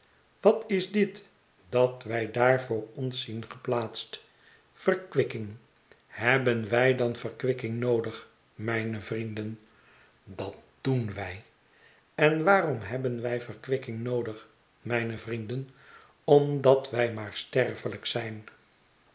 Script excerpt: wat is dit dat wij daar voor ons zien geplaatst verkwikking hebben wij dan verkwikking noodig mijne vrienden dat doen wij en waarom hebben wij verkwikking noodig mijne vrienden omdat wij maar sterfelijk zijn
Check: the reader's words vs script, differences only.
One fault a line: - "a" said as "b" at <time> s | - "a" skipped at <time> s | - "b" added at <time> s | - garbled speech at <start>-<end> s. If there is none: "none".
none